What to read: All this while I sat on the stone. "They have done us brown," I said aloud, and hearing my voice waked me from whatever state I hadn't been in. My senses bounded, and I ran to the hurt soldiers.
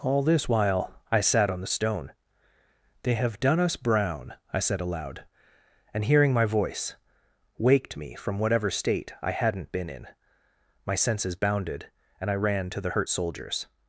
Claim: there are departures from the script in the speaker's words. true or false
false